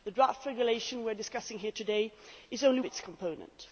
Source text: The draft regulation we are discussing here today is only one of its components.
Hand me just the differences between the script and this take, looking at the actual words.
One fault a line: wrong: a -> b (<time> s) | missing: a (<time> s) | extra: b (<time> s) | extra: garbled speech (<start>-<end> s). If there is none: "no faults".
missing: one of (2.8 s)